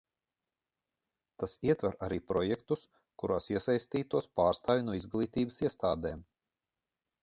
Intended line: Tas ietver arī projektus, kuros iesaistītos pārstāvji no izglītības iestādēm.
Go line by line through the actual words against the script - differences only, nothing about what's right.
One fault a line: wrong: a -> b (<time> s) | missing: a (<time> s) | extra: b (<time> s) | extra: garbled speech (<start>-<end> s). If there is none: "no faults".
no faults